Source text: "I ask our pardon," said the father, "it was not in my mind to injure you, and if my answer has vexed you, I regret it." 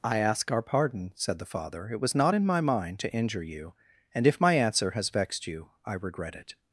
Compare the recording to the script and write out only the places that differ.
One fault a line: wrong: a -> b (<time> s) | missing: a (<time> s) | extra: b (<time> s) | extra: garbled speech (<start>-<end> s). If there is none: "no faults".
no faults